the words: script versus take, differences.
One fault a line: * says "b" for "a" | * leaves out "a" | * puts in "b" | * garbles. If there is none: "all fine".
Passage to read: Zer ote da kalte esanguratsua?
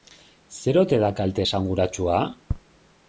all fine